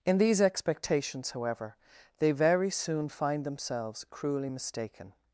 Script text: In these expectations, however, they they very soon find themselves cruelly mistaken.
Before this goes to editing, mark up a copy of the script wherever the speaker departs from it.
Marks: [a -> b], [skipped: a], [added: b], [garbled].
In these expectations, however, they [skipped: they] very soon find themselves cruelly mistaken.